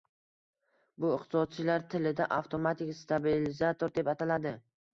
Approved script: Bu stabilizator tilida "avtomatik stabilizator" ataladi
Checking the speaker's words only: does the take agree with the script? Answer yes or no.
no